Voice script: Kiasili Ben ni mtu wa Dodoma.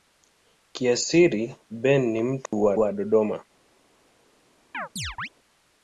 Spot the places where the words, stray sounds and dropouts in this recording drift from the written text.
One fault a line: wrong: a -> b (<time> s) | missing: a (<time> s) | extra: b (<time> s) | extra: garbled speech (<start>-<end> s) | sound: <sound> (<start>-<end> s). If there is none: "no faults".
sound: dropout (2.5-2.5 s)
extra: wa (2.8 s)
sound: chirp (4.7-5.3 s)